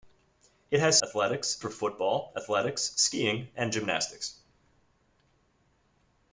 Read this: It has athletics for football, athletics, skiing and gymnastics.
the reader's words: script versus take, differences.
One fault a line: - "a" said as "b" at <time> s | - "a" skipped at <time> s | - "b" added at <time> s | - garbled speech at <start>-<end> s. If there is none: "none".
none